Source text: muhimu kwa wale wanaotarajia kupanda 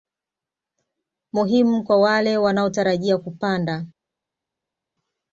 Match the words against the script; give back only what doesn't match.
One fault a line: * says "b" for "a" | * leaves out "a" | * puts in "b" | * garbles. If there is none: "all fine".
all fine